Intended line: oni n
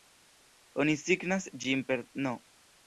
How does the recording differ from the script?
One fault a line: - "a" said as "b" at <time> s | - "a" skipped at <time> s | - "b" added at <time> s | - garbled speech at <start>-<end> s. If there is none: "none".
- "signas ĝin per" added at 1.0 s